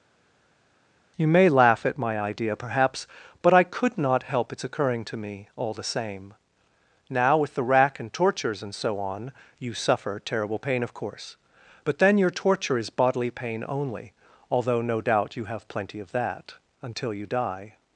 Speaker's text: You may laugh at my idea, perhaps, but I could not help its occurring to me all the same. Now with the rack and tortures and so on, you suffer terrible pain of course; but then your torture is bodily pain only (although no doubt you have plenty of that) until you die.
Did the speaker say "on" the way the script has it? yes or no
yes